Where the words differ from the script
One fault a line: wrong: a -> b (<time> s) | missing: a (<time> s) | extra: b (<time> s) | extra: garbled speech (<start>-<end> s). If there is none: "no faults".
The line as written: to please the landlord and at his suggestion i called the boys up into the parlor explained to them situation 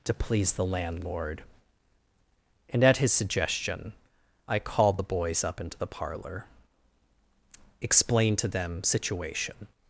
no faults